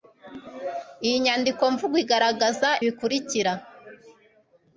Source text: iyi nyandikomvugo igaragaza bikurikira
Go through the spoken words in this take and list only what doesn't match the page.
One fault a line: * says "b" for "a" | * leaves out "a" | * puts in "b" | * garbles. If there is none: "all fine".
all fine